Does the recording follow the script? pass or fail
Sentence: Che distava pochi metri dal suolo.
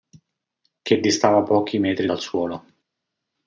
pass